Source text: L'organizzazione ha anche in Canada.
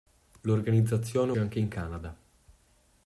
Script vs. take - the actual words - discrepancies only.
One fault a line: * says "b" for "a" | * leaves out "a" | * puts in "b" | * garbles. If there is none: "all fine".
all fine